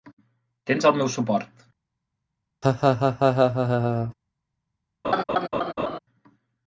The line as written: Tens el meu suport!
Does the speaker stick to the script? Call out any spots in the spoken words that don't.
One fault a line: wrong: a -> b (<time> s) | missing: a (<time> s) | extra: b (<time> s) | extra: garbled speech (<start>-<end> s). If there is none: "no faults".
no faults